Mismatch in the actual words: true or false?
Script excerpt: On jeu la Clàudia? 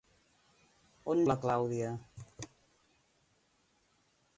true